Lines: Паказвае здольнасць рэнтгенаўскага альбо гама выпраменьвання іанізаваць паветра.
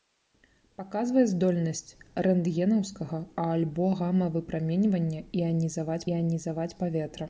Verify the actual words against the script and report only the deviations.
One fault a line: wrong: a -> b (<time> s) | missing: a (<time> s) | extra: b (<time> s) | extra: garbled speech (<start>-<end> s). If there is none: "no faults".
extra: іанізаваць (6.1 s)